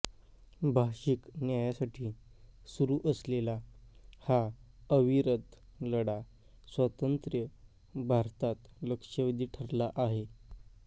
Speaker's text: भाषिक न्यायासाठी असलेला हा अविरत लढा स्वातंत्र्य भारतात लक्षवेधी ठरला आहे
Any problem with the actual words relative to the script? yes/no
yes